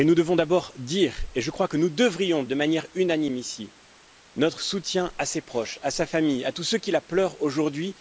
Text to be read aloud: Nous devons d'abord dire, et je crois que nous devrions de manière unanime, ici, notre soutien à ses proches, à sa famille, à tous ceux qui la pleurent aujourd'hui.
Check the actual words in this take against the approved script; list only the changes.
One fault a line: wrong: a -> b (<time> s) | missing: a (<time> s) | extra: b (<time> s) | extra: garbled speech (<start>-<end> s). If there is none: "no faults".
no faults